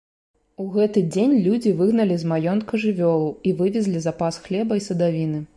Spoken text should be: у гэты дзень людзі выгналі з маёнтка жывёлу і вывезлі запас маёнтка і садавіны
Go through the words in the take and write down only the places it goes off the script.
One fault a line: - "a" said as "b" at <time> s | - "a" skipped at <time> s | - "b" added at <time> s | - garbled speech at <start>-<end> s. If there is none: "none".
- "маёнтка" said as "хлеба" at 4.5 s